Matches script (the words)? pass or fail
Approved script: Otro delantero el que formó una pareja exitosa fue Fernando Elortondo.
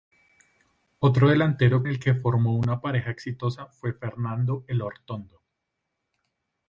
pass